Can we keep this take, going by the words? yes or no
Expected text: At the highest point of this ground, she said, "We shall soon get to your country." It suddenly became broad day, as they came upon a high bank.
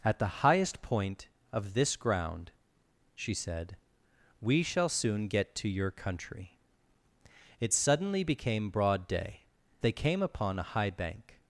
no